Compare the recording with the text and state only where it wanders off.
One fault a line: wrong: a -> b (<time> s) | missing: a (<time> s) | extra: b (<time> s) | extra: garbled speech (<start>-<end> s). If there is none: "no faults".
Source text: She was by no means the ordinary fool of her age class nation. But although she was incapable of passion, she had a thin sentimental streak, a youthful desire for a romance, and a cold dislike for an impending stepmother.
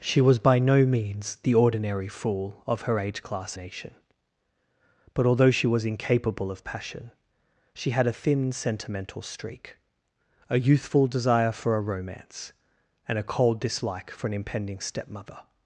no faults